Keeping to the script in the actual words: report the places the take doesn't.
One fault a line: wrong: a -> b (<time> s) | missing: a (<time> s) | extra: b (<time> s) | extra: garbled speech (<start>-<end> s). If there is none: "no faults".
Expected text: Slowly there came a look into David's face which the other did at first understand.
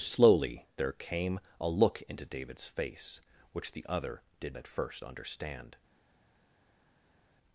no faults